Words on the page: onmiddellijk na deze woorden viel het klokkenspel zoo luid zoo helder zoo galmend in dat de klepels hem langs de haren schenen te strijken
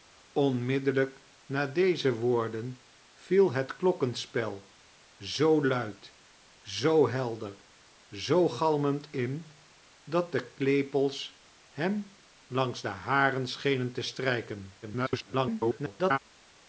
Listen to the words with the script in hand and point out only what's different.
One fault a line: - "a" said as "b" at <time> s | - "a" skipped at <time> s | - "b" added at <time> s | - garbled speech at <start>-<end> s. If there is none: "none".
- garbled speech at 14.8-16.2 s